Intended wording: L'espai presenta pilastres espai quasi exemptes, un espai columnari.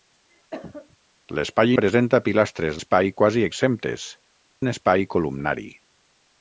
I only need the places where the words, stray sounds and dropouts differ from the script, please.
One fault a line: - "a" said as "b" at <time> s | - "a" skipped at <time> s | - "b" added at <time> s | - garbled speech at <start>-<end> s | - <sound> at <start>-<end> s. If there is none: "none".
- cough at 0.5-1.0 s